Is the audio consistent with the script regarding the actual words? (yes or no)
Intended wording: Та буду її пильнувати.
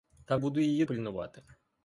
yes